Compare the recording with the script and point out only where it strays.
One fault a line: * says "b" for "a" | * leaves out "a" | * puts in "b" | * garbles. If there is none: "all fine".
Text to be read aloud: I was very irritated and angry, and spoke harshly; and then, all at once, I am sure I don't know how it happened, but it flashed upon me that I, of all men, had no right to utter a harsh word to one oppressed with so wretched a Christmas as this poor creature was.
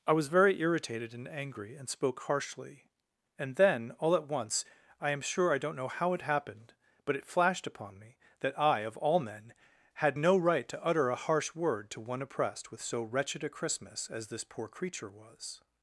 all fine